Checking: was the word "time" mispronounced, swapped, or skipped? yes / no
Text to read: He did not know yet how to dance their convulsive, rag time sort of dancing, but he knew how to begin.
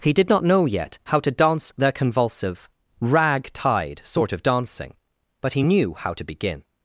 yes